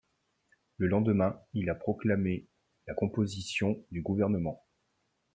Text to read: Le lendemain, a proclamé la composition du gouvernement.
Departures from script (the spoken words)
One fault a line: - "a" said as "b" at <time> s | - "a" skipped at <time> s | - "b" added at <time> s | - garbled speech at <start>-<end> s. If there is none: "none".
- "il" added at 1.5 s